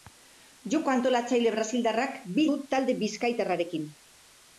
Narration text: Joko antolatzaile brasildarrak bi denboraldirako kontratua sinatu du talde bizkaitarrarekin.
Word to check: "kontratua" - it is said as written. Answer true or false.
false